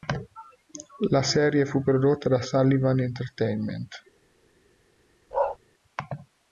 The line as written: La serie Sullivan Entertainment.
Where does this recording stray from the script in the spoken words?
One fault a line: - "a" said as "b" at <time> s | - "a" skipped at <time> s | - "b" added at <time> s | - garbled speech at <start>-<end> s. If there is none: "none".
- "fu prodotta da" added at 1.6 s